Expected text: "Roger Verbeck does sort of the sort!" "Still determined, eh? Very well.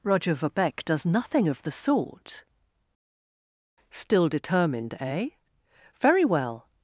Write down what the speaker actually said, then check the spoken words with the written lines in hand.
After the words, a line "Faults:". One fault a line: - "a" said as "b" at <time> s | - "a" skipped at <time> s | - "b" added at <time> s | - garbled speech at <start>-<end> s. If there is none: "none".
"Roger Verbeck does nothing of the sort!" "Still determined, eh? Very well.
Faults:
- "sort" said as "nothing" at 1.1 s